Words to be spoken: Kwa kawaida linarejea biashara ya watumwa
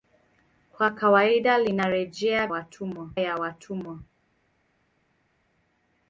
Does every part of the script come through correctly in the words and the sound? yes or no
no